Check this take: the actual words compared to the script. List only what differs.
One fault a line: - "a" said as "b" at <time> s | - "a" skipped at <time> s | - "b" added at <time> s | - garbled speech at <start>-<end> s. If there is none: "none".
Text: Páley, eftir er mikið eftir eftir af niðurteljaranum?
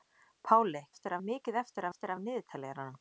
none